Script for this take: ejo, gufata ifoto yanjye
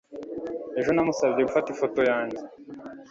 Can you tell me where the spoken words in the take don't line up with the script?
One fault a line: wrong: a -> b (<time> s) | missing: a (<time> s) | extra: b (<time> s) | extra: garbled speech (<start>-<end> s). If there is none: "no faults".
extra: namusabye (0.9 s)